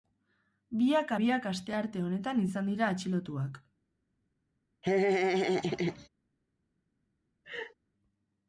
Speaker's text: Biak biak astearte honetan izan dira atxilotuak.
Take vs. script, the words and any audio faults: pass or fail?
fail